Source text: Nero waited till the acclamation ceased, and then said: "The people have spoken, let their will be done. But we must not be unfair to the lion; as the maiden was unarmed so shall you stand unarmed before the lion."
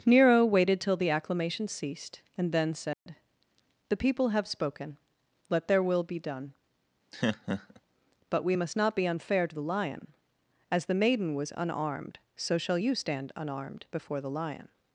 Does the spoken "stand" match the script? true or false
true